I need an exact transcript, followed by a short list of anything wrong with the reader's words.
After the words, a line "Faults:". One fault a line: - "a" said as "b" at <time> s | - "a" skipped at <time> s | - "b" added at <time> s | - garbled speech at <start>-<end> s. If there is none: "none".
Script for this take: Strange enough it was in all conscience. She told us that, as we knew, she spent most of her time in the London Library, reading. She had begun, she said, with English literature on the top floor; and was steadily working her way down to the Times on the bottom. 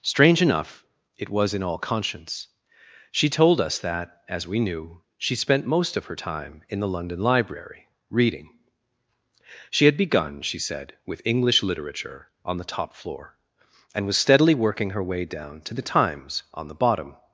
Strange enough it was in all conscience. She told us that, as we knew, she spent most of her time in the London Library, reading. She had begun, she said, with English literature on the top floor; and was steadily working her way down to the Times on the bottom.
Faults:
none